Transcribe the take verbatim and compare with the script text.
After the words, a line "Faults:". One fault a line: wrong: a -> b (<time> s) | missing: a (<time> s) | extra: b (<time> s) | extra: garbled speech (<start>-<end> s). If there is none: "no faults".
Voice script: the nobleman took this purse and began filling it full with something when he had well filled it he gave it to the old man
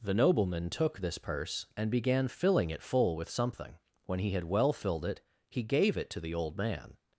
the nobleman took this purse and began filling it full with something when he had well filled it he gave it to the old man
Faults:
no faults